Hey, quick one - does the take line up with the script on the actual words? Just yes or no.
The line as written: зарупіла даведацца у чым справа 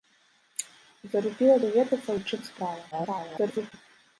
no